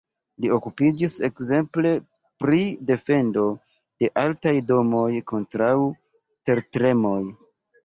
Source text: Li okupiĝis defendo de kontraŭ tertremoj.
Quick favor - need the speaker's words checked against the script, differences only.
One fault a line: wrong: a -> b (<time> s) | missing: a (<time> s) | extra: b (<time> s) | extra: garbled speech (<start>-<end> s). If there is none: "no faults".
extra: ekzemple pri (1.3 s)
extra: altaj domoj (4.2 s)